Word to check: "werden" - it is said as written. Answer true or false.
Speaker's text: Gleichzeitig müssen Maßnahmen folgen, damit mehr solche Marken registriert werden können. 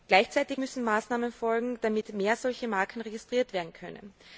true